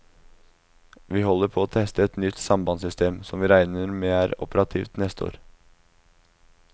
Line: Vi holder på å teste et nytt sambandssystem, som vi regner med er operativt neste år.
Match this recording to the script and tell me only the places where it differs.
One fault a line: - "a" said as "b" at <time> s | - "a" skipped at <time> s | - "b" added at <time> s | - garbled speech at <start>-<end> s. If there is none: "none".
none